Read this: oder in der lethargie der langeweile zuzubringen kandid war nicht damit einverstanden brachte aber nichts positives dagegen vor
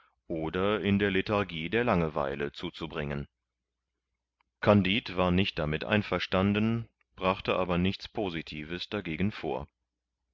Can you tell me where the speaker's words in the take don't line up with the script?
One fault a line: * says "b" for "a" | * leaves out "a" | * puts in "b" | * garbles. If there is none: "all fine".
all fine